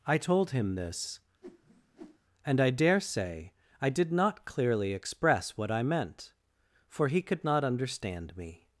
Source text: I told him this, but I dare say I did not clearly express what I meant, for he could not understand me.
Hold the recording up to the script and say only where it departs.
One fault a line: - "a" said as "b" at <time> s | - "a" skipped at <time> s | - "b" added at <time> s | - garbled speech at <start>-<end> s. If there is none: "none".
- "but" said as "and" at 2.5 s